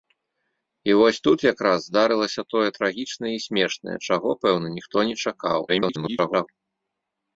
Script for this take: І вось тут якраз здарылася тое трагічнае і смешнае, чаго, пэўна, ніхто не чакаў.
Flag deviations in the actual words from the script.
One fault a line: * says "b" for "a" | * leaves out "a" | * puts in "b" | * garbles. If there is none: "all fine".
* garbles